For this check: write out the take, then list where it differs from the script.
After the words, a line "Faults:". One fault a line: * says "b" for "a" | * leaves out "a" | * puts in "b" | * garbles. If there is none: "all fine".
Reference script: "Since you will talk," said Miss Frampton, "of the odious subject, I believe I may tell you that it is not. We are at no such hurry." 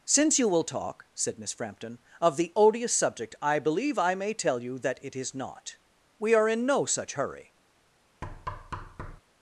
"Since you will talk," said Miss Frampton, "of the odious subject, I believe I may tell you that it is not. We are in no such hurry."
Faults:
* says "in" for "at"